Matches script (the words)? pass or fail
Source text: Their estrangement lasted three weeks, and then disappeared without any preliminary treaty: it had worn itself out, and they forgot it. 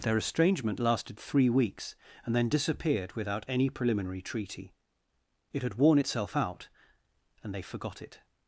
pass